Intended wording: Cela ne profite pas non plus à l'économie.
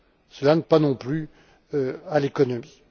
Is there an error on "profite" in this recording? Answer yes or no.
yes